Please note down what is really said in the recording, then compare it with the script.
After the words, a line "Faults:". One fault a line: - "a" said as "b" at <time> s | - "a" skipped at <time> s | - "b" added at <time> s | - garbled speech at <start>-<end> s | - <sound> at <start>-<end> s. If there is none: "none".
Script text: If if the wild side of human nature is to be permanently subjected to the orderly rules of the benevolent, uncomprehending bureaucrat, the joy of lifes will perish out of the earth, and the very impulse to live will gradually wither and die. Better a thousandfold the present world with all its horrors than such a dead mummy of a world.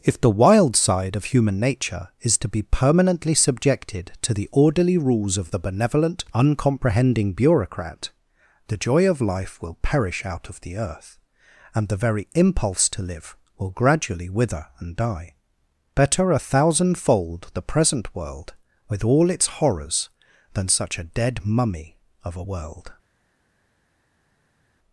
If the wild side of human nature is to be permanently subjected to the orderly rules of the benevolent, uncomprehending bureaucrat, the joy of life will perish out of the earth, and the very impulse to live will gradually wither and die. Better a thousandfold the present world with all its horrors than such a dead mummy of a world.
Faults:
- "if" skipped at 0.2 s
- "lifes" said as "life" at 9.2 s